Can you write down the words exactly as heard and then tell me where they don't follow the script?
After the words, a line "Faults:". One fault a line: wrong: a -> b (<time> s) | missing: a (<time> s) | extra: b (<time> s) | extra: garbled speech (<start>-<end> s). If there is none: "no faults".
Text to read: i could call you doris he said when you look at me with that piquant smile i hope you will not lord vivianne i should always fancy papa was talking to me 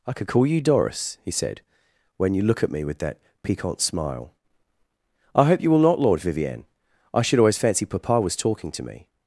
i could call you doris he said when you look at me with that piquant smile i hope you will not lord vivianne i should always fancy papa was talking to me
Faults:
no faults